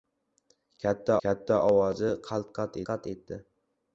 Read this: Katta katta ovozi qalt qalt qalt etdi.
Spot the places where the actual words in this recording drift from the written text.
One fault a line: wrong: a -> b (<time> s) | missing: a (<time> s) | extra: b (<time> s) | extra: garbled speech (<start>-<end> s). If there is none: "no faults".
no faults